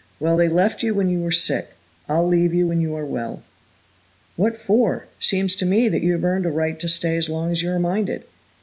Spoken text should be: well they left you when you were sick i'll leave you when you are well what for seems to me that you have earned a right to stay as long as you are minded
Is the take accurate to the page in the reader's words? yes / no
yes